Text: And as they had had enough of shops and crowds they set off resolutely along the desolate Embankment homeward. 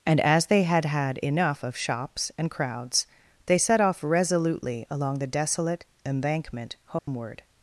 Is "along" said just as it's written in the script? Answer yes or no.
yes